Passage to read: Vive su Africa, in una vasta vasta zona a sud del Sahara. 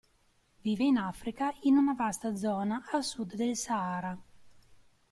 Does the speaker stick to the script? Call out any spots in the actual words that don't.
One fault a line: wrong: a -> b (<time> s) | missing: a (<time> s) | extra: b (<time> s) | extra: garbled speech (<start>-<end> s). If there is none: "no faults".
wrong: su -> in (0.8 s)
missing: vasta (2.4 s)